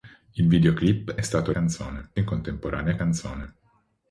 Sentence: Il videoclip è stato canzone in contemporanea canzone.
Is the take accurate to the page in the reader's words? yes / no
yes